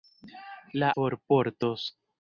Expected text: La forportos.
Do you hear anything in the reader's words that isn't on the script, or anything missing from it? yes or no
no